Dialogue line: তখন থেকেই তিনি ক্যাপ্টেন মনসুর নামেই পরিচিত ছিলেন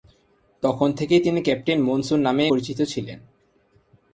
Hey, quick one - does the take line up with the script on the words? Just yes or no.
yes